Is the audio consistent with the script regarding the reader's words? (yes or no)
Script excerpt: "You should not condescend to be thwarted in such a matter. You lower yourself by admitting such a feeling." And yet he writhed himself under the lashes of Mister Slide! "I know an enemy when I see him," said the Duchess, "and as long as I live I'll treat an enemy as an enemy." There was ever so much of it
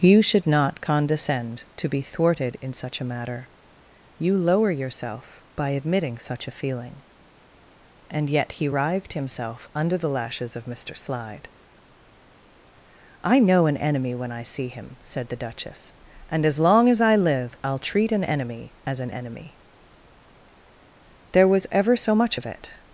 yes